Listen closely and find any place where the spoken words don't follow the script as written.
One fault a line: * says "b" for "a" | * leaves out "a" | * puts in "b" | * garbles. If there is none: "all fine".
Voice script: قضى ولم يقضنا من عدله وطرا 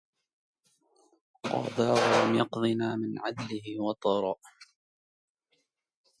all fine